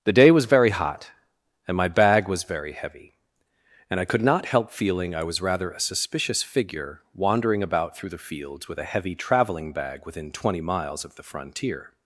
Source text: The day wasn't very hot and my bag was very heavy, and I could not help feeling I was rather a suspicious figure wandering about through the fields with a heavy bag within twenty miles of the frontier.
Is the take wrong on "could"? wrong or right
right